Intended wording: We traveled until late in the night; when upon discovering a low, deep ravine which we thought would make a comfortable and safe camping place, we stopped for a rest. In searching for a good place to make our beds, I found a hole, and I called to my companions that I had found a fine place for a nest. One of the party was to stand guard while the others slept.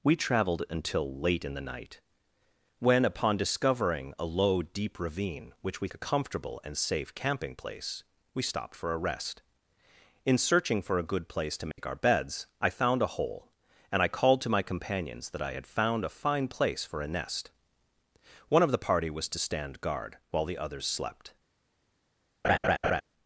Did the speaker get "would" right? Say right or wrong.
wrong